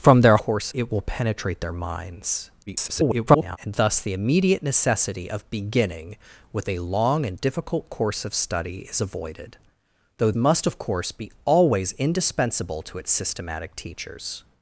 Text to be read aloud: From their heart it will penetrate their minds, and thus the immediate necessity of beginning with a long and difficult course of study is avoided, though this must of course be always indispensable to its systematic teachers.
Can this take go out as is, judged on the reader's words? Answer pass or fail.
fail